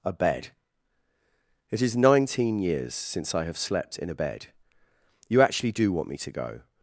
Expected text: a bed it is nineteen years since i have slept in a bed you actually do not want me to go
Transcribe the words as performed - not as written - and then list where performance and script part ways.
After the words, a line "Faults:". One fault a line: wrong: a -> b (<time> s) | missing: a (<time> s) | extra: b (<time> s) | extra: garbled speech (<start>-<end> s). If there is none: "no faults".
a bed it is nineteen years since i have slept in a bed you actually do want me to go
Faults:
missing: not (5.9 s)